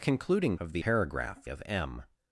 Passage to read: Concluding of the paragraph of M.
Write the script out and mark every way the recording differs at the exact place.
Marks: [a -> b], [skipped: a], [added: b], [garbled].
Concluding of the paragraph of M.